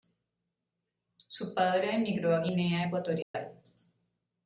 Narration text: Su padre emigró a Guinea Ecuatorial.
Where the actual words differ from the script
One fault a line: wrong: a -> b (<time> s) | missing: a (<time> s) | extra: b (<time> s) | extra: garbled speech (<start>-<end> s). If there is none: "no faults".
no faults